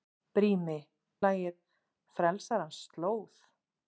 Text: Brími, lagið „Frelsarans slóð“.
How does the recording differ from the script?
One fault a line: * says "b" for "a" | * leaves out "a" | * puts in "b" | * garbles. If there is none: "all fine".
all fine